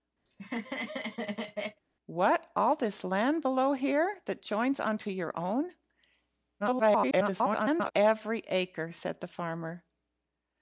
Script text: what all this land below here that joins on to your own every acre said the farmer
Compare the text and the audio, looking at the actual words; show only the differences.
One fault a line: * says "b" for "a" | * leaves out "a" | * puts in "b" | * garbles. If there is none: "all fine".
* garbles